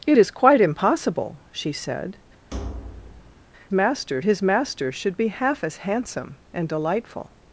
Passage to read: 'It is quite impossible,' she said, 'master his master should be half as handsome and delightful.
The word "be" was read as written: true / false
true